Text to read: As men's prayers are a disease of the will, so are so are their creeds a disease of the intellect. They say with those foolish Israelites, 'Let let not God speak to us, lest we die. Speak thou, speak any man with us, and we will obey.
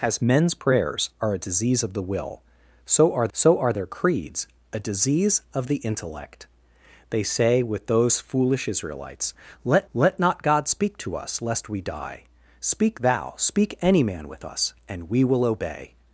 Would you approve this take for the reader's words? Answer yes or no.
yes